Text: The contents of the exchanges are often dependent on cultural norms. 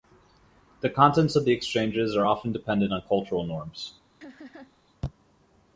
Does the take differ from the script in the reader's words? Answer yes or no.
no